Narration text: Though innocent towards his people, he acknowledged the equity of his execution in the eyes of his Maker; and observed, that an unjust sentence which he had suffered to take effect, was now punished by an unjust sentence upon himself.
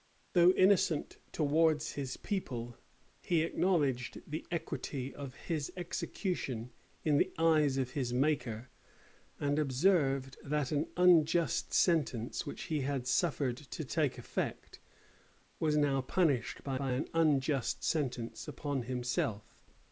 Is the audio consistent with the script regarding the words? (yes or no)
no